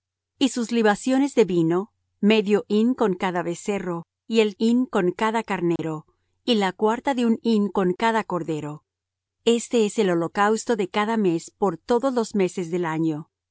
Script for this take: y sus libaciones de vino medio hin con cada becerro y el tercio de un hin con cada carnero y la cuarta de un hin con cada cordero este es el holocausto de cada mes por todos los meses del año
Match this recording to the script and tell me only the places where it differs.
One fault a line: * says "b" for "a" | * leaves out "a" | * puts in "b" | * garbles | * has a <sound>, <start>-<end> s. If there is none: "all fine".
* leaves out "tercio de un"
* has a dropout, 5.8-5.8 s